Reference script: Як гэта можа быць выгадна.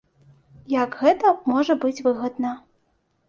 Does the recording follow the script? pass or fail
pass